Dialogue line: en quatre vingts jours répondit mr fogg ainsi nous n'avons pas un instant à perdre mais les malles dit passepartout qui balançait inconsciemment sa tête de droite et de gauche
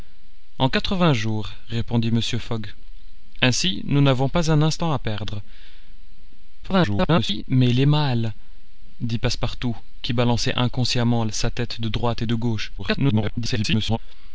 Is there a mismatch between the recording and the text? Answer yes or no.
yes